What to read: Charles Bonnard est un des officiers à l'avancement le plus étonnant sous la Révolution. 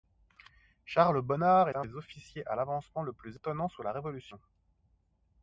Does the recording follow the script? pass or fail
fail